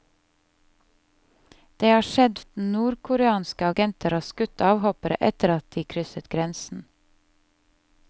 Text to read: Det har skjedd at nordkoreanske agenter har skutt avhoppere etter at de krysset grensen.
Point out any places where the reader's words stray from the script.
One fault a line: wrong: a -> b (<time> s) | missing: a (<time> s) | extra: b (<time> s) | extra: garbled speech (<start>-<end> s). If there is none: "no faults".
no faults